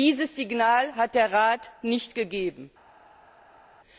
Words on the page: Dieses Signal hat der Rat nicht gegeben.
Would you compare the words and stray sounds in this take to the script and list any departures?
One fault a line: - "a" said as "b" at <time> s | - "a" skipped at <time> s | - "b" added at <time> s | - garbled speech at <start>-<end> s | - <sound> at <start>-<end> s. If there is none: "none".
none